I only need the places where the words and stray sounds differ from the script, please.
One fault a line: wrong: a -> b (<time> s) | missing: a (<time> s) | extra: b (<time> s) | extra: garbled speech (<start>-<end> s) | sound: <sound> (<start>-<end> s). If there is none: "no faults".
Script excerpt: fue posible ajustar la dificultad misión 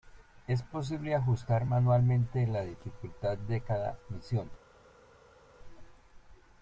wrong: fue -> es (0.5 s)
extra: manualmente (1.6 s)
extra: de cada (3.4 s)